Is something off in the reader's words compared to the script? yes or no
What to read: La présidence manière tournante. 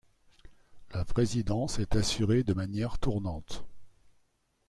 yes